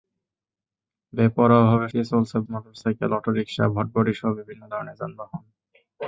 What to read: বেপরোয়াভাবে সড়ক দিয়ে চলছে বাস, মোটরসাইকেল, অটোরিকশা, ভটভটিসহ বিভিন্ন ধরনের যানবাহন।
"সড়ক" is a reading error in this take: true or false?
true